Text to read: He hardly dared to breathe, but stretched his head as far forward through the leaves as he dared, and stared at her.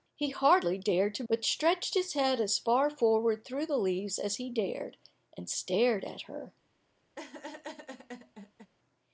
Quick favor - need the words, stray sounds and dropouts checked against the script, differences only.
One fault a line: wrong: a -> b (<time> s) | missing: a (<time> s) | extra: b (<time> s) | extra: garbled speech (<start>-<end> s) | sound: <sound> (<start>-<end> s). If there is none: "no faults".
missing: breathe (1.2 s)
sound: laugh (7.2-8.7 s)